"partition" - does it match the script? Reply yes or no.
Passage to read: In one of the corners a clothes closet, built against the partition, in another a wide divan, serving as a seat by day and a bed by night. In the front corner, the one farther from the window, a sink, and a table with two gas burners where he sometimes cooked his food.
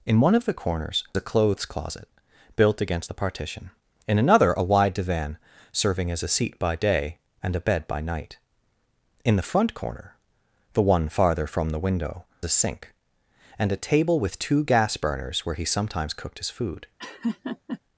yes